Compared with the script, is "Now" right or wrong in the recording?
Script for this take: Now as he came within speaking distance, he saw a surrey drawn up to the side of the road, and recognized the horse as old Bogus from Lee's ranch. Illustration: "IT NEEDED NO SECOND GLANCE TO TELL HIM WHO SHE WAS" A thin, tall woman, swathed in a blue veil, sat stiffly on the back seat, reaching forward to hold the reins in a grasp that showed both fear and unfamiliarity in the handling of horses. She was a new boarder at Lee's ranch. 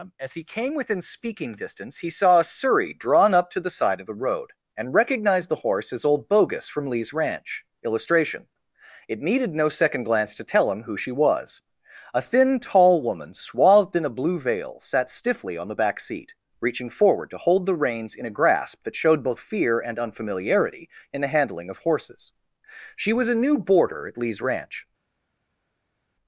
wrong